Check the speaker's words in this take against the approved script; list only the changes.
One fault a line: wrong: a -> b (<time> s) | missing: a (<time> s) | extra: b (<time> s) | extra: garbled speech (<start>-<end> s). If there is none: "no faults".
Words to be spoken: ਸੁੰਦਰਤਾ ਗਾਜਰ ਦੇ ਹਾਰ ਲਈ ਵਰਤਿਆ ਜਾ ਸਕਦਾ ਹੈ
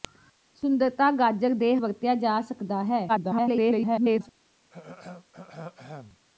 missing: ਹਾਰ ਲਈ (1.8 s)
extra: garbled speech (3.1-4.3 s)